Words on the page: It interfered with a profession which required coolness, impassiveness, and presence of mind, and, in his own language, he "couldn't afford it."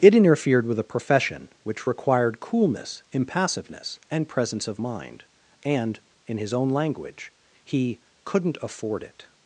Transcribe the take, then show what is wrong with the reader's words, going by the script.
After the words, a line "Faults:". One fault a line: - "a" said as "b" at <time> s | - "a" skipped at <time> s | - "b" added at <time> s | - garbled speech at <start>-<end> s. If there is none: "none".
It interfered with a profession which required coolness, impassiveness, and presence of mind, and, in his own language, he "couldn't afford it."
Faults:
none